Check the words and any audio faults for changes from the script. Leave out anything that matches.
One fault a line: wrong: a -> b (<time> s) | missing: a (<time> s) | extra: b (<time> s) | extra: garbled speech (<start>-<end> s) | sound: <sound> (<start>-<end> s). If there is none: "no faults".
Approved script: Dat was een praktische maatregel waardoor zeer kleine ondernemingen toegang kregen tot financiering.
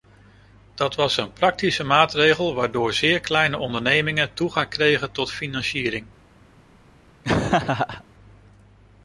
sound: laugh (7.2-8.0 s)